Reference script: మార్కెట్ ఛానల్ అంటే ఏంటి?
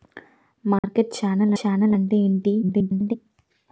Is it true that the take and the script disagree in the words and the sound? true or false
true